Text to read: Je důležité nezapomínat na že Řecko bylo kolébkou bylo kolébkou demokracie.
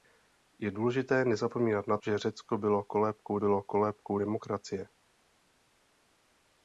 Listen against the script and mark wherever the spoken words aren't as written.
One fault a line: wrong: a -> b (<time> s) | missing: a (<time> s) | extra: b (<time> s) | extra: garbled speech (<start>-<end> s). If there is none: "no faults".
no faults